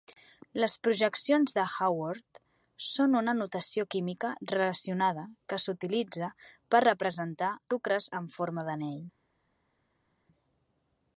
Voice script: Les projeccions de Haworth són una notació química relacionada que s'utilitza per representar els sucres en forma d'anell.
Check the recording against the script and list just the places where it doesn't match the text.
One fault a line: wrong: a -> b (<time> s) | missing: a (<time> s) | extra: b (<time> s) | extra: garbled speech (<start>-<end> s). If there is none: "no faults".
missing: els (7.5 s)